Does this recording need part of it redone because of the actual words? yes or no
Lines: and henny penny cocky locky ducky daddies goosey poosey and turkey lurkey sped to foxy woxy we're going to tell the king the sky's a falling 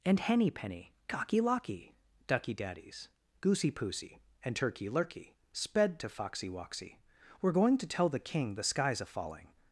no